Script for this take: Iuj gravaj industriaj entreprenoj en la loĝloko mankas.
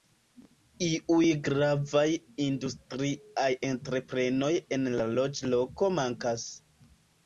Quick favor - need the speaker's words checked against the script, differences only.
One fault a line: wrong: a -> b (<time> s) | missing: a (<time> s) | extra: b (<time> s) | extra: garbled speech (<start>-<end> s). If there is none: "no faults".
no faults